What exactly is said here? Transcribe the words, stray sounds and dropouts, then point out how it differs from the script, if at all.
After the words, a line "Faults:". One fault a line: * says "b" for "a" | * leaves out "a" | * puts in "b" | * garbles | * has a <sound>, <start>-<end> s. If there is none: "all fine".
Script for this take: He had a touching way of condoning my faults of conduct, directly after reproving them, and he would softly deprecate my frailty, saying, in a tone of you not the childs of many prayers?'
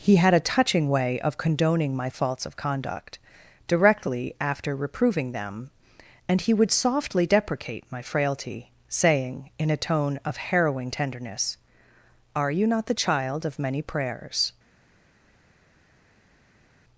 He had a touching way of condoning my faults of conduct, directly after reproving them, and he would softly deprecate my frailty, saying, in a tone of harrowing tenderness, 'Are you not the child of many prayers?'
Faults:
* puts in "harrowing tenderness Are"
* says "child" for "childs"